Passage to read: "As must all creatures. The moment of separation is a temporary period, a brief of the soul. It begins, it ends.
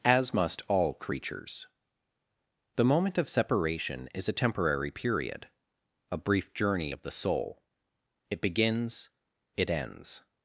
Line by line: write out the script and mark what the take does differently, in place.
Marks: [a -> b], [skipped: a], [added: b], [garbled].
"As must all creatures. The moment of separation is a temporary period, a brief [added: journey] of the soul. It begins, it ends.